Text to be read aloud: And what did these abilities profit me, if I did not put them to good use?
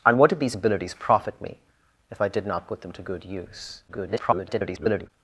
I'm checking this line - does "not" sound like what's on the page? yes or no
yes